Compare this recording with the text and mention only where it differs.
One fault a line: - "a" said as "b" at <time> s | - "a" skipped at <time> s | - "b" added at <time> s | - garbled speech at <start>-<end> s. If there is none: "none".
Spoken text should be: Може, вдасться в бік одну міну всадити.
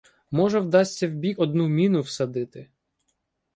none